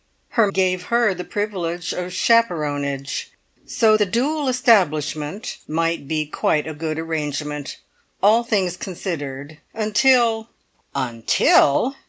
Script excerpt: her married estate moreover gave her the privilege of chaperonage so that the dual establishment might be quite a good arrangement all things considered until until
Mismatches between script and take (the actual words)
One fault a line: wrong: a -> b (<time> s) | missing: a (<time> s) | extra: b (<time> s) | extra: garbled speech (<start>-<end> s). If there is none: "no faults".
missing: married estate moreover (0.5 s)
missing: that (4.0 s)